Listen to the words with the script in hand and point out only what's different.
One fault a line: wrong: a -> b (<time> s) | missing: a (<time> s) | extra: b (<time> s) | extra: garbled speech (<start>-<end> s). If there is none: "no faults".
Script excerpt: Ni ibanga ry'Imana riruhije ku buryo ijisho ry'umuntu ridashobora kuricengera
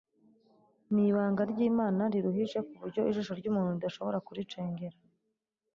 no faults